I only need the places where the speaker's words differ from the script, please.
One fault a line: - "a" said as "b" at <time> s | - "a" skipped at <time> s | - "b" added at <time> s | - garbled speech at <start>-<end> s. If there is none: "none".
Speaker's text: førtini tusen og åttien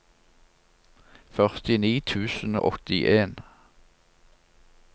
none